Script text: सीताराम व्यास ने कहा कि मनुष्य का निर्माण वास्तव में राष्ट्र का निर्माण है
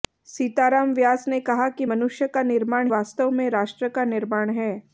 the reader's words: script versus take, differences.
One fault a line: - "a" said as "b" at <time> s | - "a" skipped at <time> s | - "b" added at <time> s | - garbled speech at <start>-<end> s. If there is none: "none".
none